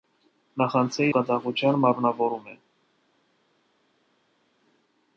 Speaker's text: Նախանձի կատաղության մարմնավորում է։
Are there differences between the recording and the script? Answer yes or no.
no